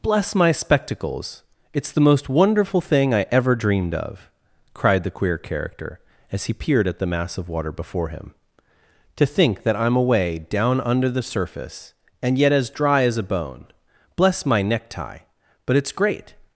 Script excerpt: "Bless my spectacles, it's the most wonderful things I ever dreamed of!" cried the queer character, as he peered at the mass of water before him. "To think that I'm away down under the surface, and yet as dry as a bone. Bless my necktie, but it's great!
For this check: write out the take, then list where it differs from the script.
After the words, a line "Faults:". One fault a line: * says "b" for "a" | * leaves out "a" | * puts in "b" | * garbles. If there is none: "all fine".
"Bless my spectacles, it's the most wonderful thing I ever dreamed of!" cried the queer character, as he peered at the mass of water before him. "To think that I'm away down under the surface, and yet as dry as a bone. Bless my necktie, but it's great!
Faults:
* says "thing" for "things"